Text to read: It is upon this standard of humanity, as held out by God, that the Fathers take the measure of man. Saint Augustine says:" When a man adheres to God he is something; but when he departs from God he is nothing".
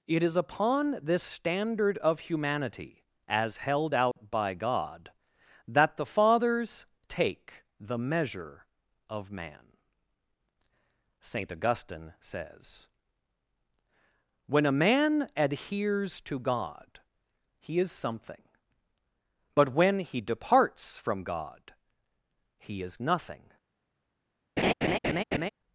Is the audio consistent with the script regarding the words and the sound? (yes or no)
no